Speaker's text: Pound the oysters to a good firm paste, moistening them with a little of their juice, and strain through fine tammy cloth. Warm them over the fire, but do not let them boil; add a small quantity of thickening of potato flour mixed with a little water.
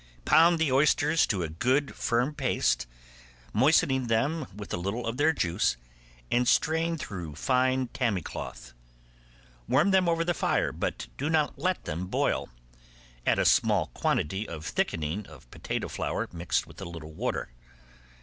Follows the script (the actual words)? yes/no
yes